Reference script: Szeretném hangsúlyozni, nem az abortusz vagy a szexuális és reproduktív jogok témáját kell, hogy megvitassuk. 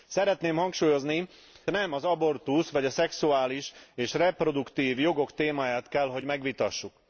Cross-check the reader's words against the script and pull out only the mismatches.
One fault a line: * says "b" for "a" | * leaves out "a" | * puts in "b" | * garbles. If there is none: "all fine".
all fine